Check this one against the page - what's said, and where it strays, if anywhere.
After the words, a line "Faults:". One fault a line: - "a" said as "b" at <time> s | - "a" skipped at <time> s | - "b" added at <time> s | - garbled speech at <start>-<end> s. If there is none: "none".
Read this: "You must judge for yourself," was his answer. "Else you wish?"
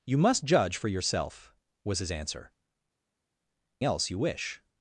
"You must judge for yourself," was his answer. "Else you wish?"
Faults:
none